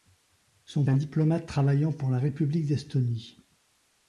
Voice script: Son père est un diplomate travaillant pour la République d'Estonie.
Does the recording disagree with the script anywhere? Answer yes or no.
yes